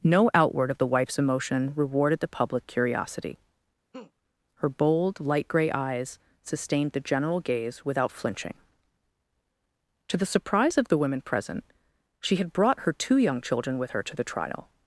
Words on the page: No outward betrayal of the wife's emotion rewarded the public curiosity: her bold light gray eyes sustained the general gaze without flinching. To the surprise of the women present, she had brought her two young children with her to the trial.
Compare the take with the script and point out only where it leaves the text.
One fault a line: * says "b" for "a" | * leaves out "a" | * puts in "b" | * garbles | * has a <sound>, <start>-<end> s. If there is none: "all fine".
* leaves out "betrayal"
* has a laugh, 3.9-4.1 s